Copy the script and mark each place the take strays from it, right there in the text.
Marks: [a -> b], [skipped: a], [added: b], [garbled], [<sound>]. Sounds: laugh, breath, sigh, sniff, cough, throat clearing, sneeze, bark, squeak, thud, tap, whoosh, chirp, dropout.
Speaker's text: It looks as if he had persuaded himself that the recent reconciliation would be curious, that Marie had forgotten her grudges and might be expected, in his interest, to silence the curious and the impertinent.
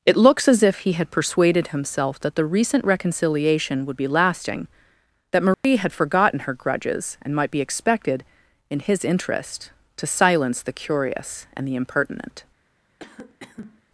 It looks as if he had persuaded himself that the recent reconciliation would be [curious, -> lasting] that Marie [dropout] had forgotten her grudges and might be expected, in his interest, to silence the curious and the impertinent. [cough]